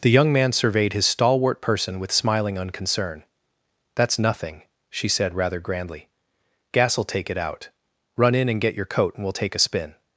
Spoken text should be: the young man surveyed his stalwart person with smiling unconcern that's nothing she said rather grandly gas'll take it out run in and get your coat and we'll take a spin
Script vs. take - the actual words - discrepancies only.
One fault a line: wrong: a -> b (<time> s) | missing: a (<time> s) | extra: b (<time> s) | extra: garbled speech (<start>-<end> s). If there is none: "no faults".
no faults